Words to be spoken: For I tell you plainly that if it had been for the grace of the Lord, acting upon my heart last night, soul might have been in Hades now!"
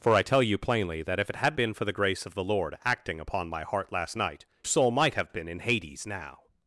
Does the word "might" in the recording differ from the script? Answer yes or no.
no